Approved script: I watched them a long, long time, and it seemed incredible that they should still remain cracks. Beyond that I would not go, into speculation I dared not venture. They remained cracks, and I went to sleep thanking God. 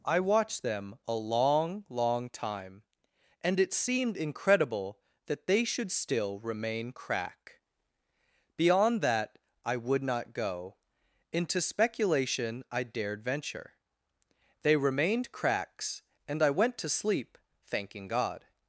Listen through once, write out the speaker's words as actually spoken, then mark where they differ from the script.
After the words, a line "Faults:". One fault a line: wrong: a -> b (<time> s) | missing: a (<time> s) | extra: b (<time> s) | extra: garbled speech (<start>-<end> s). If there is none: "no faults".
I watched them a long, long time, and it seemed incredible that they should still remain crack. Beyond that I would not go, into speculation I dared venture. They remained cracks, and I went to sleep thanking God.
Faults:
wrong: cracks -> crack (6.9 s)
missing: not (13.2 s)